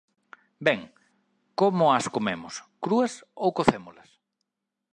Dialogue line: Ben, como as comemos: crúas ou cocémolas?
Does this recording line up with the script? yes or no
yes